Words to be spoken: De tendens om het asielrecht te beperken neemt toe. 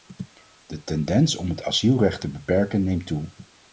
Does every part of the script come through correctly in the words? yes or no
yes